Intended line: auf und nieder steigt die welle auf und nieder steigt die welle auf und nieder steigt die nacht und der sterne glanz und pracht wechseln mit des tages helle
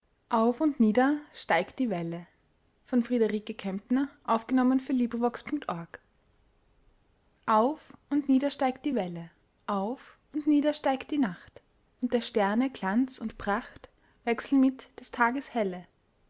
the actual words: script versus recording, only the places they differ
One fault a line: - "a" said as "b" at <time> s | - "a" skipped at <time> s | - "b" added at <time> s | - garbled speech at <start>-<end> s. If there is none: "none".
none